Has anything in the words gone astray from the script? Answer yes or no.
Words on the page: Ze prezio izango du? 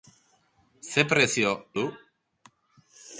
yes